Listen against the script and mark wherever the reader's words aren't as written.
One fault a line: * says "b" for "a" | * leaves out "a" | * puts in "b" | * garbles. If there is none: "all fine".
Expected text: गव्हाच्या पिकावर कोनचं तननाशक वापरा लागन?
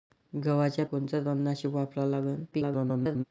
* leaves out "पिकावर"
* garbles